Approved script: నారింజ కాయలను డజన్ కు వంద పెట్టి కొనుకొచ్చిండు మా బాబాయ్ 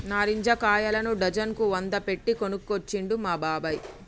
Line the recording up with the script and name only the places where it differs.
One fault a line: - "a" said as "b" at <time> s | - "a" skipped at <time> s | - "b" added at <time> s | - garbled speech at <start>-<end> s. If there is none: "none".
none